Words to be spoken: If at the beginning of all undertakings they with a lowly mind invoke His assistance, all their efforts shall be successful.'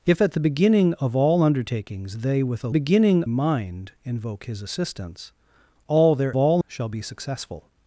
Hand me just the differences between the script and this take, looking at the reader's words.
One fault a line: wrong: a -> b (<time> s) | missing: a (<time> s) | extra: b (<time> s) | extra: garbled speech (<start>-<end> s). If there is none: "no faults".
wrong: lowly -> beginning (2.7 s)
wrong: efforts -> all (6.4 s)